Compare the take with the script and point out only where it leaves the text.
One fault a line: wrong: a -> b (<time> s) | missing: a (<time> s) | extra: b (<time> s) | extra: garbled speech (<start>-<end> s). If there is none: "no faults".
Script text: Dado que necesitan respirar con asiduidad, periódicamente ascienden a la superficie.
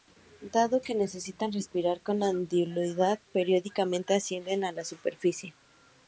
no faults